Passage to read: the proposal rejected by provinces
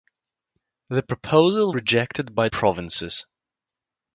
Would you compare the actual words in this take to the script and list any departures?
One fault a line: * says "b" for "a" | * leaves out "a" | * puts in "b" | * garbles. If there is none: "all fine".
all fine